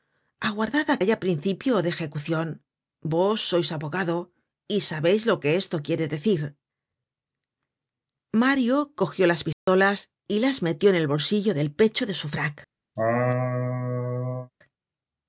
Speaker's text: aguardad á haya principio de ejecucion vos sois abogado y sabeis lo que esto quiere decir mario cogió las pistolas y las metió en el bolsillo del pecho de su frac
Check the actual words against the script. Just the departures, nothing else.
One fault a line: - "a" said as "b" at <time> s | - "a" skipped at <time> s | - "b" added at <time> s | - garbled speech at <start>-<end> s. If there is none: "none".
none